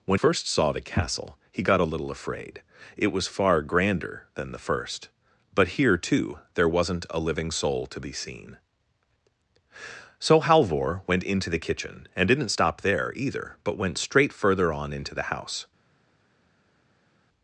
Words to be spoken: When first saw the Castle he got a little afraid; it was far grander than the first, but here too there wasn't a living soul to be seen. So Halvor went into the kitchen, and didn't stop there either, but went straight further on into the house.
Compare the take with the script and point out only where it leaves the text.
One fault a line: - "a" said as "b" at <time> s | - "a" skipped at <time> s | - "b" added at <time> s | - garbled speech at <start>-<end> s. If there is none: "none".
none